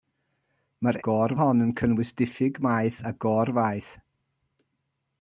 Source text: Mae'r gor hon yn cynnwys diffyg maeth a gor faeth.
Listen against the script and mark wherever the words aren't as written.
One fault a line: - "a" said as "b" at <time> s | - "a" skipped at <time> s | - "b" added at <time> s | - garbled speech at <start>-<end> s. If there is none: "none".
none